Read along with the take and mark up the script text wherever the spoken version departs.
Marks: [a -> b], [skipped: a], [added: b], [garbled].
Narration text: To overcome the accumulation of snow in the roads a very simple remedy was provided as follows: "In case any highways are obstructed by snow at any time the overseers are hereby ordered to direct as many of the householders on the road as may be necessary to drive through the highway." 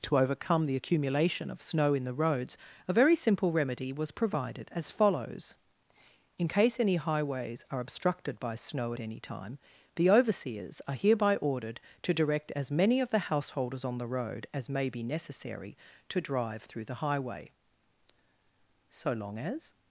To overcome the accumulation of snow in the roads a very simple remedy was provided as follows: "In case any highways are obstructed by snow at any time the overseers are hereby ordered to direct as many of the householders on the road as may be necessary to drive through the highway." [added: So long as]